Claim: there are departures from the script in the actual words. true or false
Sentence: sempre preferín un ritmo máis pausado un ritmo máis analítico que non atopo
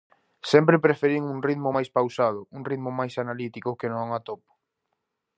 false